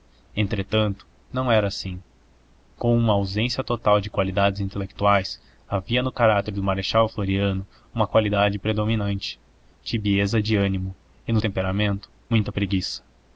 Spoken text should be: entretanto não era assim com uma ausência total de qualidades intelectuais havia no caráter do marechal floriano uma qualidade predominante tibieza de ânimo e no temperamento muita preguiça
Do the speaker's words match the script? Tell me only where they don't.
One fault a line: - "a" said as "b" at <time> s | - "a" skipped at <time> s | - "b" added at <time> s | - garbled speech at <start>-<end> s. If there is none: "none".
none